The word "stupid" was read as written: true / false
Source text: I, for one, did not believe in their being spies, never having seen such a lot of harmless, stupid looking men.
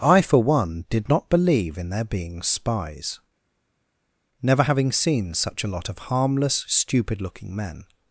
true